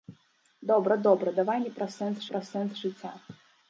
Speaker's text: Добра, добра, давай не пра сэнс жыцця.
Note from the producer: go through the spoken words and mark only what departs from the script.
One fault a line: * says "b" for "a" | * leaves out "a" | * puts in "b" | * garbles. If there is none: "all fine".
* puts in "пра сэнс"